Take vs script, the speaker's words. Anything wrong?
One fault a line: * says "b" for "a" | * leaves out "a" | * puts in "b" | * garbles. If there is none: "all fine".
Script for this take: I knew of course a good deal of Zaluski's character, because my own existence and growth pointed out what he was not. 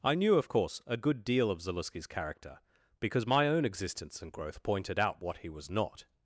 all fine